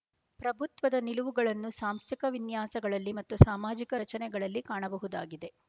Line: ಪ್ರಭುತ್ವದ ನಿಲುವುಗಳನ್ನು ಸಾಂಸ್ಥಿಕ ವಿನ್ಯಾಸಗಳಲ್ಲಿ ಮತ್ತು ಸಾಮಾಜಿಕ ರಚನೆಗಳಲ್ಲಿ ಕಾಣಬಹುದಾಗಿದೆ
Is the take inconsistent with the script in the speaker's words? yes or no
no